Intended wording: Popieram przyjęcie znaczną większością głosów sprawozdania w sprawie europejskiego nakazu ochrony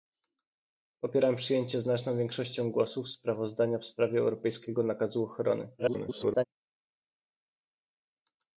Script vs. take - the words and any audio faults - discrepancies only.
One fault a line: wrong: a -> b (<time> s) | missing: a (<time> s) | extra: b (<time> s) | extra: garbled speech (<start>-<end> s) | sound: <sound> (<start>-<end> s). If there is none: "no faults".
extra: garbled speech (5.8-6.4 s)